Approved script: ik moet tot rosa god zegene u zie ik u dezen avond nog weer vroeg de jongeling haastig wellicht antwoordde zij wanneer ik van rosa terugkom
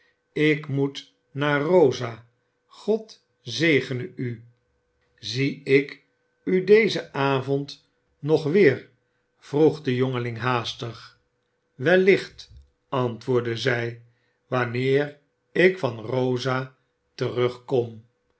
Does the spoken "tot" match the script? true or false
false